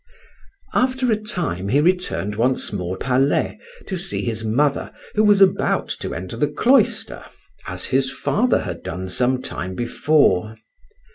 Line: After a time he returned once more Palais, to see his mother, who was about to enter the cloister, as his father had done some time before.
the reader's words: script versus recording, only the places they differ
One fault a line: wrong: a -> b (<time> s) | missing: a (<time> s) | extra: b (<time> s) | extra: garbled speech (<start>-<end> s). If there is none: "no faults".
no faults